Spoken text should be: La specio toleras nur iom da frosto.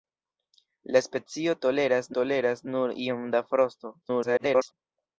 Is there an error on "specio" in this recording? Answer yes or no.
no